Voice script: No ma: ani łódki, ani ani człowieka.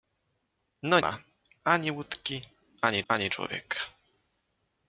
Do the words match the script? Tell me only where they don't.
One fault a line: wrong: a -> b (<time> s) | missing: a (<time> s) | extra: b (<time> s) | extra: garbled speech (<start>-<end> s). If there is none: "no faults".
no faults